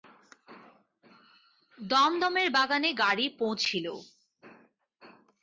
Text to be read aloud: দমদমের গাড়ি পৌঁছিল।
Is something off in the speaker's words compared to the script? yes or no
yes